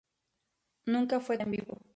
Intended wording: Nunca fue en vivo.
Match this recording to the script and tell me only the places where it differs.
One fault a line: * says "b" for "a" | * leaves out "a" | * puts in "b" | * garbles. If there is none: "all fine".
all fine